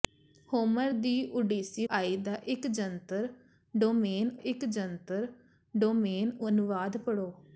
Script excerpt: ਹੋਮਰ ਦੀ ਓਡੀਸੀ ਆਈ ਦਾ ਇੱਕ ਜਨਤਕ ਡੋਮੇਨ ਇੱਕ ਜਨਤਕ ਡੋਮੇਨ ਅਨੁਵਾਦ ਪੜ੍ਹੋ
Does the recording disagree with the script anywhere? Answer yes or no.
no